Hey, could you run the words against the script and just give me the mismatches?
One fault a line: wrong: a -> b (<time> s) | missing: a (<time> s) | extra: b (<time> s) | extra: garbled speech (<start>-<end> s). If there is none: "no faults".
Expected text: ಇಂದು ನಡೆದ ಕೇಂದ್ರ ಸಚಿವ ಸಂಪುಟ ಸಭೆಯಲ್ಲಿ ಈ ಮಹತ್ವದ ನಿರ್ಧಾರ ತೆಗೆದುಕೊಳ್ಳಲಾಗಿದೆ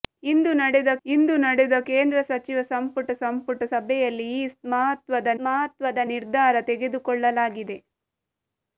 extra: ಇಂದು ನಡೆದ (1.1 s)
extra: ಸಂಪುಟ (3.1 s)
extra: ಮಹತ್ವದ (5.4 s)